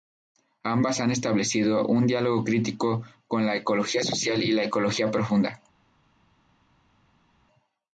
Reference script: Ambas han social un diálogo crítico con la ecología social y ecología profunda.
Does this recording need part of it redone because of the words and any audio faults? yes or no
yes